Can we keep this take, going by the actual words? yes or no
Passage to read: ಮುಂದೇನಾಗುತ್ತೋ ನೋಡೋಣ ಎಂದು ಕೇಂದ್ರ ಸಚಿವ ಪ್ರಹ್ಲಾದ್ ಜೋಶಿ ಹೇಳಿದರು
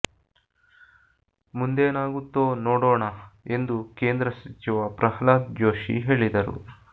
yes